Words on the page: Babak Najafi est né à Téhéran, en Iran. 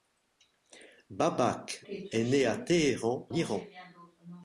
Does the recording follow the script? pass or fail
fail